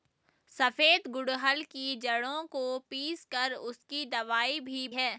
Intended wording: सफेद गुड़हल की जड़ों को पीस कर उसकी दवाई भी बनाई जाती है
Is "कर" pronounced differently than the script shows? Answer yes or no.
no